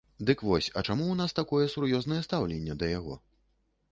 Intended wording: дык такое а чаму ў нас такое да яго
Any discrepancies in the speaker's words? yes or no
yes